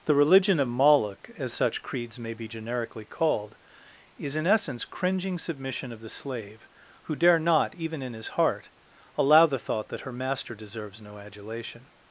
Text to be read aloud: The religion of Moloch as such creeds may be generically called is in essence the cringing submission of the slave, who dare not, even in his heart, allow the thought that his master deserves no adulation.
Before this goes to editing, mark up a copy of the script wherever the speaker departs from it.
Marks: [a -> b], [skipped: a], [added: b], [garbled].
The religion of Moloch as such creeds may be generically called is in essence [skipped: the] cringing submission of the slave, who dare not, even in his heart, allow the thought that [his -> her] master deserves no adulation.